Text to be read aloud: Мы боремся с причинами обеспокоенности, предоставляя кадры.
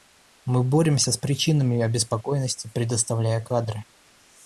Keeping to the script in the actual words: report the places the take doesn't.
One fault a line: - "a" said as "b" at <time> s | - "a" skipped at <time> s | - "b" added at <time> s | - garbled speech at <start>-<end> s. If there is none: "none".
none